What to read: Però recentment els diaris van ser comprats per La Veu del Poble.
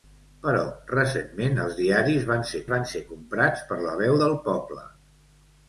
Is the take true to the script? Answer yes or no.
no